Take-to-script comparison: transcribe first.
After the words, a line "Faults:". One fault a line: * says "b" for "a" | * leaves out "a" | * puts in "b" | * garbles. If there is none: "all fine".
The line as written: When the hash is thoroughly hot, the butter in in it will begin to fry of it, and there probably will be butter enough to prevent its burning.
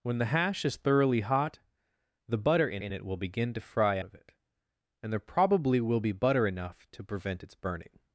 When the hash is thoroughly hot, the butter in in it will begin to fry of it, and there probably will be butter enough to prevent its burning.
Faults:
all fine